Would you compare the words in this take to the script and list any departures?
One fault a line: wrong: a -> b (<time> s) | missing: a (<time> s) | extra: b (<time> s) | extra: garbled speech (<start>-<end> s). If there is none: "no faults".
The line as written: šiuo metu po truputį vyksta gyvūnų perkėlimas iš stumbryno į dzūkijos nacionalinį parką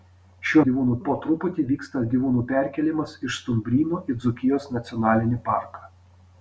wrong: metu -> gyvūnų (0.7 s)